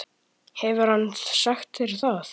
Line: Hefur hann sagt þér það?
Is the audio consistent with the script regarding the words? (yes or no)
yes